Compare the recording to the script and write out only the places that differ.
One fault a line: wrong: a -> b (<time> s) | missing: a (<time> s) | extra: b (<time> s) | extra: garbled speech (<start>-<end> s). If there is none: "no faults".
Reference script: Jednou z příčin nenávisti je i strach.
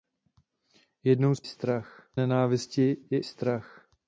wrong: příčin -> strach (1.4 s)
missing: i (3.2 s)